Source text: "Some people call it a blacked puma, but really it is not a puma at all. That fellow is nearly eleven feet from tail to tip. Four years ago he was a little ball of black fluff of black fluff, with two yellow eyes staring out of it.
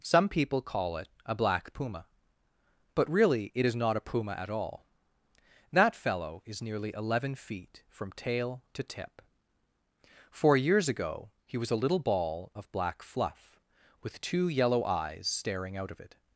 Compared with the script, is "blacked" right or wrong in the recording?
wrong